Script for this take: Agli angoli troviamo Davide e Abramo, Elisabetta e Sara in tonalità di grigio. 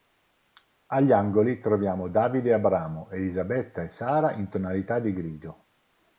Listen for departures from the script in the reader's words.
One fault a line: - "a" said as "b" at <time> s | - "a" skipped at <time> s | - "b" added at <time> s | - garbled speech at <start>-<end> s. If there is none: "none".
none